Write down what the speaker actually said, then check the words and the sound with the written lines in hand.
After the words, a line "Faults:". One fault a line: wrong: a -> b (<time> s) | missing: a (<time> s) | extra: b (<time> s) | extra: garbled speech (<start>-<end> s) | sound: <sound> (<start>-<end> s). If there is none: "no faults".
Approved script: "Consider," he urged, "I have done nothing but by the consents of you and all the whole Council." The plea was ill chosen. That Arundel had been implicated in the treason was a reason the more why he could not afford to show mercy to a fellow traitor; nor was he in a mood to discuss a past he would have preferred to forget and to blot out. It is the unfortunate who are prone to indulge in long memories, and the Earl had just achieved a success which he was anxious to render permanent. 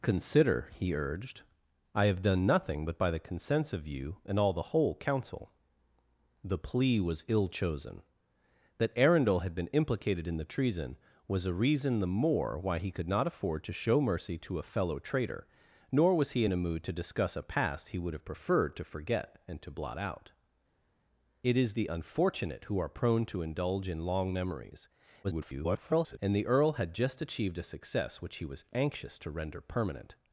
"Consider," he urged, "I have done nothing but by the consents of you and all the whole Council." The plea was ill chosen. That Arundel had been implicated in the treason was a reason the more why he could not afford to show mercy to a fellow traitor; nor was he in a mood to discuss a past he would have preferred to forget and to blot out. It is the unfortunate who are prone to indulge in long memories, [garbled] and the Earl had just achieved a success which he was anxious to render permanent.
Faults:
extra: garbled speech (25.2-26.2 s)